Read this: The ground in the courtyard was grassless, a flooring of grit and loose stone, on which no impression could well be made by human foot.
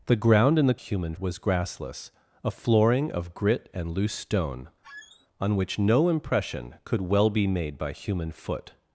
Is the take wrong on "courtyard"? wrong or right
wrong